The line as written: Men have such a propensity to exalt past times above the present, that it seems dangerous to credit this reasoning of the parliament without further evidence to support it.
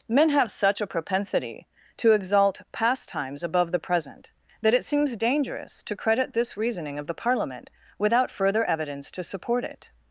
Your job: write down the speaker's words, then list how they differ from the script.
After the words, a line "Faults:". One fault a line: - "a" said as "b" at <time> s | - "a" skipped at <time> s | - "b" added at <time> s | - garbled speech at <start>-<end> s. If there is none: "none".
Men have such a propensity to exalt past times above the present, that it seems dangerous to credit this reasoning of the parliament without further evidence to support it.
Faults:
none